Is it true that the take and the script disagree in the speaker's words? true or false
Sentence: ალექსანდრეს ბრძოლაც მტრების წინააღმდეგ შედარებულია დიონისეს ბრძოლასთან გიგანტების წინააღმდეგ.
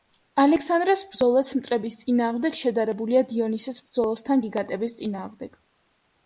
false